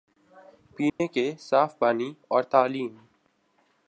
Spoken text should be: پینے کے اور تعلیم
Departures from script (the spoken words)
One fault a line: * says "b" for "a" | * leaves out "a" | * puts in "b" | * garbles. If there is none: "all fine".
* puts in "صاف پانی"